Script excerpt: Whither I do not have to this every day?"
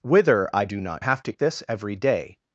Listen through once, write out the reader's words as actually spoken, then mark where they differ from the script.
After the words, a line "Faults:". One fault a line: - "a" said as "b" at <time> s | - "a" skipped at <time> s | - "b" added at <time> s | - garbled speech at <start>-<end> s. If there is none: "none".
Whither I do not have to this every day?"
Faults:
none